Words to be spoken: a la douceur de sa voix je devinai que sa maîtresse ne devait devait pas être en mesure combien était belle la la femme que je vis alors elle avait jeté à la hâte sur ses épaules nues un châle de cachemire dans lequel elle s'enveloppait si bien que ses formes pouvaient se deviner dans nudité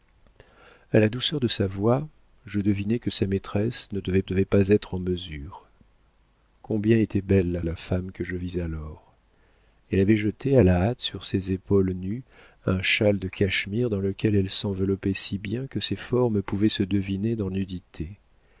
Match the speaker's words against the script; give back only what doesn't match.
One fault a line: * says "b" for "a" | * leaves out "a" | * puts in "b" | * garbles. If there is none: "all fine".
all fine